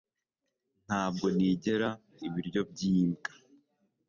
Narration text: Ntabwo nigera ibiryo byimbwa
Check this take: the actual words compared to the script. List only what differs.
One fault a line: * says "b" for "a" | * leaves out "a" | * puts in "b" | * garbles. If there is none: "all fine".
all fine